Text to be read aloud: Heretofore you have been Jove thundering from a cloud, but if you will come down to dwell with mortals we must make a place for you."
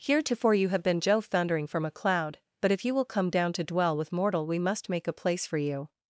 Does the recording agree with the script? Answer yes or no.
no